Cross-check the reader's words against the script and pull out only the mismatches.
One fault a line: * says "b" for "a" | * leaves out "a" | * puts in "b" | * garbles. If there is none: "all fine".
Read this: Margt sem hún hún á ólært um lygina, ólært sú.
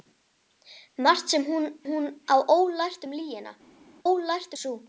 all fine